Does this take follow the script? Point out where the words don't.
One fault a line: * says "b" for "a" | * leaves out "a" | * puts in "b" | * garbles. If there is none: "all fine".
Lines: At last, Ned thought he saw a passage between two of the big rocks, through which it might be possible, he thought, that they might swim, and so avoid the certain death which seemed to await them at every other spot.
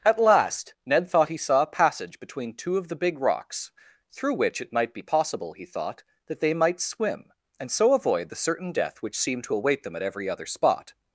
all fine